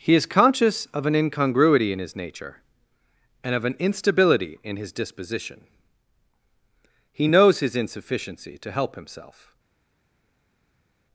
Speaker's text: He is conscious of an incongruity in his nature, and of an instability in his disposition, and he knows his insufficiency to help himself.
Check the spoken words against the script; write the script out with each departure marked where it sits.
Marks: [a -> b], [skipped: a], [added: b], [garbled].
He is conscious of an incongruity in his nature, and of an instability in his disposition, [skipped: and] he knows his insufficiency to help himself.